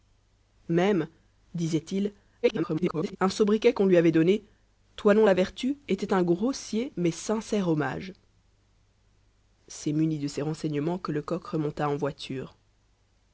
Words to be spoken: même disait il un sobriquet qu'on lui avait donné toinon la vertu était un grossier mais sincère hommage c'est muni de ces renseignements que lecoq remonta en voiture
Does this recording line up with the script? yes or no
no